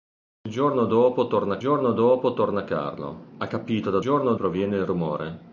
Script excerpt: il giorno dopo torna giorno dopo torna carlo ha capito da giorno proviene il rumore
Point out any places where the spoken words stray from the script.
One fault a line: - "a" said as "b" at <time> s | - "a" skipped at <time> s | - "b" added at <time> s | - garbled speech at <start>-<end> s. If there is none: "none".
none